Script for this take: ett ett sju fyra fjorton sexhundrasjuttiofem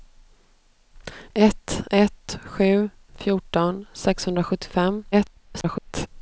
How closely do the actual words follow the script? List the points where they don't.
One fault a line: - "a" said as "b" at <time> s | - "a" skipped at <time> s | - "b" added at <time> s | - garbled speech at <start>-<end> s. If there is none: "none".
- "fyra" skipped at 2.9 s
- garbled speech at 5.1-6.1 s